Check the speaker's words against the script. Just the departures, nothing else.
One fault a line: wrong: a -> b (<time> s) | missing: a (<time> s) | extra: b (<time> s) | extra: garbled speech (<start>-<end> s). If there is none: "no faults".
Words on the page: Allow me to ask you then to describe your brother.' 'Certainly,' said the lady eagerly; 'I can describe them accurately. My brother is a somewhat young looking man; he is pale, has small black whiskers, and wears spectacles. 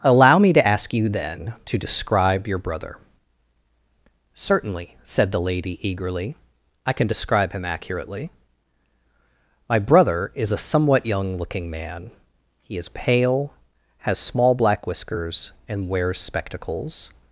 wrong: them -> him (7.5 s)